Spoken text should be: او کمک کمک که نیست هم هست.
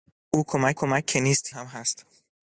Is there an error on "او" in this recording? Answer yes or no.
no